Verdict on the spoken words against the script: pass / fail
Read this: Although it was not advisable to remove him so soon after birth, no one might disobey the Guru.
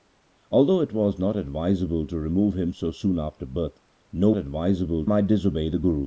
fail